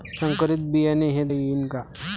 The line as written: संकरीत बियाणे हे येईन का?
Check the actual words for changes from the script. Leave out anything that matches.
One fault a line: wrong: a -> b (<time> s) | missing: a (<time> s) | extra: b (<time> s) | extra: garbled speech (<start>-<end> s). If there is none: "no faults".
no faults